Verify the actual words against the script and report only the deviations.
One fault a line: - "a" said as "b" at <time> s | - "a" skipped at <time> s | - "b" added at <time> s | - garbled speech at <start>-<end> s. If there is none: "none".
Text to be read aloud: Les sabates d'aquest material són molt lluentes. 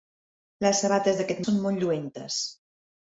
- "material" skipped at 1.4 s